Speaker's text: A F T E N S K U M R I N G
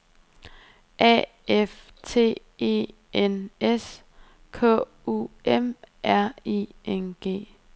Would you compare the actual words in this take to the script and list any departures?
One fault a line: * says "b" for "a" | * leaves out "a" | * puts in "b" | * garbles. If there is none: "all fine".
all fine